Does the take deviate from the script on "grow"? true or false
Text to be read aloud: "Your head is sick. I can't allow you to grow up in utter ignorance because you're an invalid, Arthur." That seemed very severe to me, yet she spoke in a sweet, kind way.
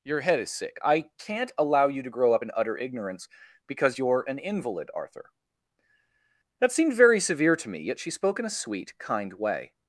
false